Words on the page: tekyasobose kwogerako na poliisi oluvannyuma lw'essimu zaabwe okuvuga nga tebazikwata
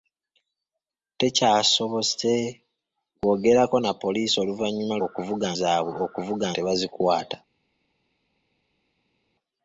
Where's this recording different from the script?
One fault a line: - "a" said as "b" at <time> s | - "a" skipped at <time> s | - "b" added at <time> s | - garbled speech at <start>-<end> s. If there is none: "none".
- "lw'essimu" said as "okuvuga" at 5.1 s
- "nga" skipped at 6.5 s